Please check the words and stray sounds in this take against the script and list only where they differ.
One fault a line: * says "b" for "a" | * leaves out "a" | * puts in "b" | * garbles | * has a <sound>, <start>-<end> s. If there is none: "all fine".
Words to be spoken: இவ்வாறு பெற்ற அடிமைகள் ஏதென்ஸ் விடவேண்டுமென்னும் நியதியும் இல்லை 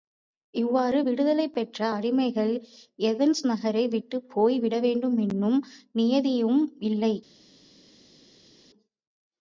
* puts in "விடுதலை"
* puts in "நகரை விட்டுப் போய்"